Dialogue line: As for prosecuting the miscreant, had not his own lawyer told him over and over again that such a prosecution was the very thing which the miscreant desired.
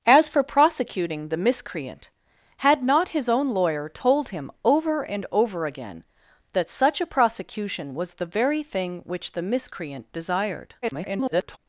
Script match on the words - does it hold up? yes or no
no